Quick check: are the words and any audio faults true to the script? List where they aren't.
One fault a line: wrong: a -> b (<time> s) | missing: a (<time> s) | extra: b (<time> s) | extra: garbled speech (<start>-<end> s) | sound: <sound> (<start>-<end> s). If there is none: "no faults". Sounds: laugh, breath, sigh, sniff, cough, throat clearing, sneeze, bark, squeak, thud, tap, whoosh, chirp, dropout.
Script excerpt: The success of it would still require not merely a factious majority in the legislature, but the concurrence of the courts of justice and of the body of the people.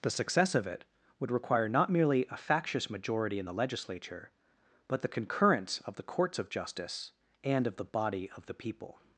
missing: still (1.3 s)